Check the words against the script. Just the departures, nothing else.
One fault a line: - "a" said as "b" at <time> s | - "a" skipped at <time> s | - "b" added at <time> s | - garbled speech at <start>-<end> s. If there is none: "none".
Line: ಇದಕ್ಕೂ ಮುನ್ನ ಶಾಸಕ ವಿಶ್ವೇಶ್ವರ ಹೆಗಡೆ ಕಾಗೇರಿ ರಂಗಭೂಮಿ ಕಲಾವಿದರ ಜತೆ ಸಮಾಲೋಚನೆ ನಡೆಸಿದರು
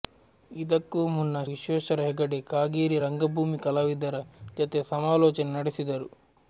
- "ಶಾಸಕ" skipped at 1.4 s